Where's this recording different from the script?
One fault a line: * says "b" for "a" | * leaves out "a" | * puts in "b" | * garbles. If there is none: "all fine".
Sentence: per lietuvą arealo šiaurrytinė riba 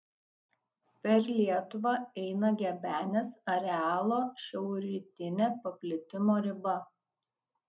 * puts in "eina gebenės"
* puts in "paplitimo"